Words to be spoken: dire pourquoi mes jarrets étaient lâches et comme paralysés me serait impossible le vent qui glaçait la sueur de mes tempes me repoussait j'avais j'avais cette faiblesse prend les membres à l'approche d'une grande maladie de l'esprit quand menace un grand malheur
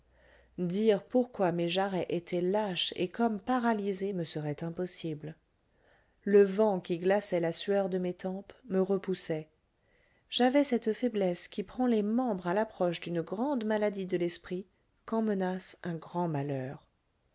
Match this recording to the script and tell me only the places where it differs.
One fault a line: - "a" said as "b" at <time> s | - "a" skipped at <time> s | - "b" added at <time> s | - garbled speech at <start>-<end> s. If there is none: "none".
- "j'avais" skipped at 10.6 s
- "qui" added at 11.5 s